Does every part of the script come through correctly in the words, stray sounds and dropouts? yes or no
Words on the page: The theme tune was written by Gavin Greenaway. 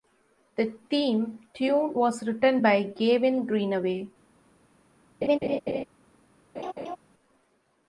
no